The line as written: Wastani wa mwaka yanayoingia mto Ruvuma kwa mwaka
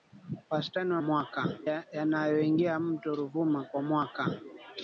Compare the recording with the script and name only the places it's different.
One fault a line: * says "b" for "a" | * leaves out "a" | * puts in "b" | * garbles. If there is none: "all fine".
all fine